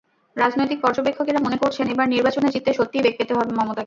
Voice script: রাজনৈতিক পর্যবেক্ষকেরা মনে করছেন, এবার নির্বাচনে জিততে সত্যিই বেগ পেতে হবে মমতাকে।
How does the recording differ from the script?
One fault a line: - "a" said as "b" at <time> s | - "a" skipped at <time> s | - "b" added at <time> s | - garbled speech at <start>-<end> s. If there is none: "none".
none